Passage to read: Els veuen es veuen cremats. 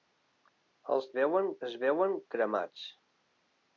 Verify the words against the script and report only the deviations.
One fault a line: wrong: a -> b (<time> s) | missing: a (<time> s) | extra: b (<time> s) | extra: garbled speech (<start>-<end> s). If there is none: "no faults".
no faults